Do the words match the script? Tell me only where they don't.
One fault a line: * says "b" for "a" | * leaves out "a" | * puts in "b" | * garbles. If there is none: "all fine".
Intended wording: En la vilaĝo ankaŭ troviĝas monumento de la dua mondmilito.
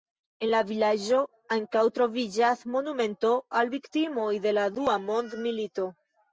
* puts in "al viktimoj"